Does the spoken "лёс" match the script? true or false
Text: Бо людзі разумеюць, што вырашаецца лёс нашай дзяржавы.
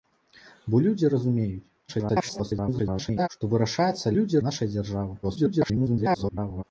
false